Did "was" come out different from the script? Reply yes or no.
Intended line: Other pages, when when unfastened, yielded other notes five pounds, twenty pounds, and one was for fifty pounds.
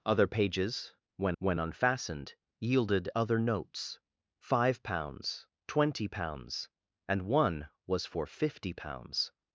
no